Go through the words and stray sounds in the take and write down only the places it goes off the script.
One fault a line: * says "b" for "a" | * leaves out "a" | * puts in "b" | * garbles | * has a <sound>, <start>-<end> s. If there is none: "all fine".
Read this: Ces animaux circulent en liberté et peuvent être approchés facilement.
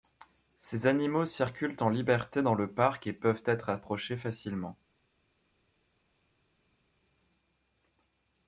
* puts in "dans le parc"